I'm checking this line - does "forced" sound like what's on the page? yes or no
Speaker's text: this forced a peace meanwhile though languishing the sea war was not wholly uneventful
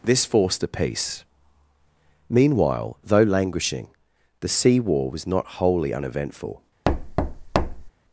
yes